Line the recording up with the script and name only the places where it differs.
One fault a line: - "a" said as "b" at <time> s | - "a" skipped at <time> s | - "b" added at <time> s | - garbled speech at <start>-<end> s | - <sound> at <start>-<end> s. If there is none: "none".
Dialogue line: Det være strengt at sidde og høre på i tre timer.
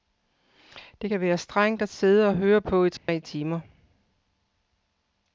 - "kan" added at 1.1 s
- dropout at 3.0-3.1 s